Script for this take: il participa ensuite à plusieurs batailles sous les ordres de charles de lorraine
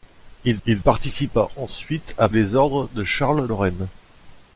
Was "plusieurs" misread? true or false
true